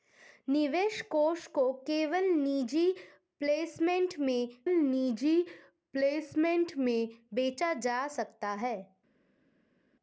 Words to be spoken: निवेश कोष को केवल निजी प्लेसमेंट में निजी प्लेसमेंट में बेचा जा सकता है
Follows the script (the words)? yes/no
yes